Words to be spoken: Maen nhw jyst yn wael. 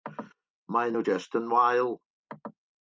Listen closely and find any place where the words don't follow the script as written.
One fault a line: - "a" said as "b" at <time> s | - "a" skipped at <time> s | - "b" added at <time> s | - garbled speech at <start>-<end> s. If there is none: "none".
none